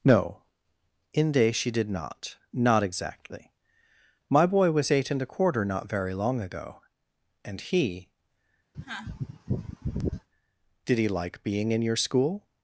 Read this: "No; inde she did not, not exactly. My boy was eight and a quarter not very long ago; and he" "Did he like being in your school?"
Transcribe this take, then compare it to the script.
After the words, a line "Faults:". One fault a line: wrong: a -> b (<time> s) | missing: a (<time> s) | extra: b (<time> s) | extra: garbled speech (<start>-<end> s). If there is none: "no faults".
"No; inde she did not, not exactly. My boy was eight and a quarter not very long ago; and he" "Did he like being in your school?"
Faults:
no faults